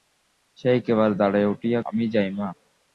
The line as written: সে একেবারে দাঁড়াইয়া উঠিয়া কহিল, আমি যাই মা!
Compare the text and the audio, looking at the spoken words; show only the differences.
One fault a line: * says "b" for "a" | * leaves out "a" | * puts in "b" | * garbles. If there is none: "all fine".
* leaves out "কহিল"